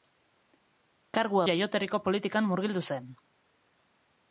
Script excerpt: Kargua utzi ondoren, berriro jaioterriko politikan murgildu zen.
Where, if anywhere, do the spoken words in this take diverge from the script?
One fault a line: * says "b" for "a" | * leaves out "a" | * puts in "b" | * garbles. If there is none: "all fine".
* leaves out "utzi ondoren berriro"